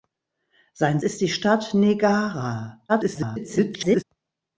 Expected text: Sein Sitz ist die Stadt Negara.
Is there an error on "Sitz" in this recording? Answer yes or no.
yes